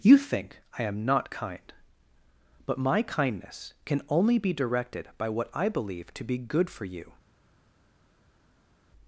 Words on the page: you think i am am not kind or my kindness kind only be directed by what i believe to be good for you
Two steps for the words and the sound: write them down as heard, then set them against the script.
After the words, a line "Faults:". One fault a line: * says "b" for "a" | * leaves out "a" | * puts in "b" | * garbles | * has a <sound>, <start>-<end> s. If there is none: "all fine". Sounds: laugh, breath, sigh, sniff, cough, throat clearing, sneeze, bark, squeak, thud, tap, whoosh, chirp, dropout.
you think i am not kind but my kindness can only be directed by what i believe to be good for you
Faults:
* leaves out "am"
* says "but" for "or"
* says "can" for "kind"